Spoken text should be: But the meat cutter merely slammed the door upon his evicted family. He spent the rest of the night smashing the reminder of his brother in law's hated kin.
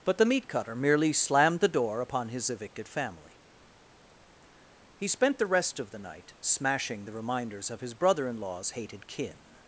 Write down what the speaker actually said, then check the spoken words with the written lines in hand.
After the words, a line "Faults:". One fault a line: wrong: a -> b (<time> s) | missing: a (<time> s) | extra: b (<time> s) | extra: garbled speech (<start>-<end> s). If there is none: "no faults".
But the meat cutter merely slammed the door upon his evicted family. He spent the rest of the night smashing the reminders of his brother in law's hated kin.
Faults:
wrong: reminder -> reminders (7.1 s)